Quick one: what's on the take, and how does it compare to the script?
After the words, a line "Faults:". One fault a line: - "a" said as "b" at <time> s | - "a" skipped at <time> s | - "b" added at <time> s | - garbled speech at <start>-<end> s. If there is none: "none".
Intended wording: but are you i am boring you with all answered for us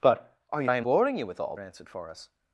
but are you i am boring you with all answered for us
Faults:
none